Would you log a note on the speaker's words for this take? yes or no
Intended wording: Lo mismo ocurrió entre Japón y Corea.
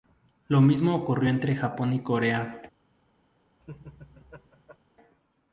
no